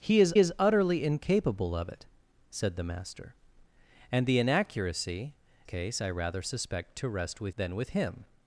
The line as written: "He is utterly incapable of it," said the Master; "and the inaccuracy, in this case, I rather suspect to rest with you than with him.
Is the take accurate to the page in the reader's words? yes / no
no